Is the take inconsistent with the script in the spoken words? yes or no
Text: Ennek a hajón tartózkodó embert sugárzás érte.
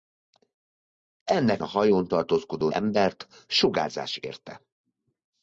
no